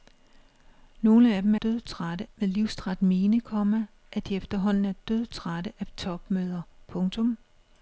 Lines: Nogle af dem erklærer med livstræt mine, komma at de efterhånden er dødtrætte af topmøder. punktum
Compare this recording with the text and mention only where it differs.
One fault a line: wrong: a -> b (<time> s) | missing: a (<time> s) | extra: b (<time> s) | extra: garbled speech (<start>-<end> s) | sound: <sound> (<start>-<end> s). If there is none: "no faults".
wrong: erklærer -> dødtrætte (1.6 s)